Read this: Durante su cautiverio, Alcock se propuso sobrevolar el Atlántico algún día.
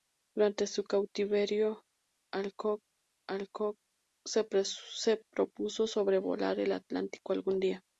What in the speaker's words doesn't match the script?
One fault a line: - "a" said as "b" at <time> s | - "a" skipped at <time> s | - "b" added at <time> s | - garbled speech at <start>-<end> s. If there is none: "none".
- "Alcock" added at 3.3 s